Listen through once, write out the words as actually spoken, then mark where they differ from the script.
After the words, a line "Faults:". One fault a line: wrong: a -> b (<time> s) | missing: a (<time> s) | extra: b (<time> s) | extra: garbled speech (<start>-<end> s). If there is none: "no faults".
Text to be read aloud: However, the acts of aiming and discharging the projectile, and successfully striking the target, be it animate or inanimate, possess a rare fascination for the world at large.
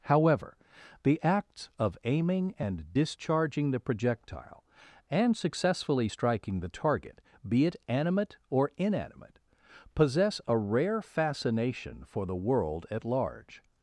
However, the acts of aiming and discharging the projectile, and successfully striking the target, be it animate or inanimate, possess a rare fascination for the world at large.
Faults:
no faults